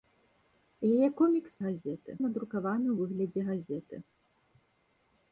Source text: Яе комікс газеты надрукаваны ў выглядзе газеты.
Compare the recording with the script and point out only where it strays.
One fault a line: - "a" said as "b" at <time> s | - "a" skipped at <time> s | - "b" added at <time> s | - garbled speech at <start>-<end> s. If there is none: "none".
none